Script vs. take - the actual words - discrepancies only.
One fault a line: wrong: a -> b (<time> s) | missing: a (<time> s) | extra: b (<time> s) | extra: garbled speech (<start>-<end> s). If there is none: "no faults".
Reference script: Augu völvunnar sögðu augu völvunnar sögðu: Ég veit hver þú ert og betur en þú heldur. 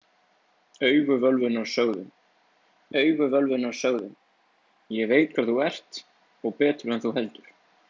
no faults